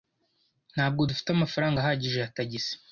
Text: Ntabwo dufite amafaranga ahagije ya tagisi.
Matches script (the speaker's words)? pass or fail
pass